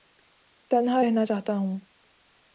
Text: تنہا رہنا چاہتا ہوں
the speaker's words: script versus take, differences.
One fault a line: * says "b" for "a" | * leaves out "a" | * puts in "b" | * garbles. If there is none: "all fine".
all fine